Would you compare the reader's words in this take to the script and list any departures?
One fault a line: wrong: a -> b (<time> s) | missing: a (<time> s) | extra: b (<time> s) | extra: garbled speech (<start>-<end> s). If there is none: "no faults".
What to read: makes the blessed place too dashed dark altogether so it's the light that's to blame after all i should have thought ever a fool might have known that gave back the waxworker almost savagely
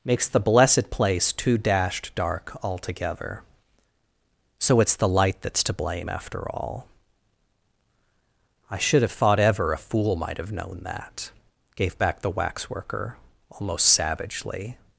no faults